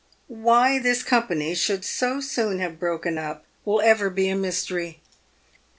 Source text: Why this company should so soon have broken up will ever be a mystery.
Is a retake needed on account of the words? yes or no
no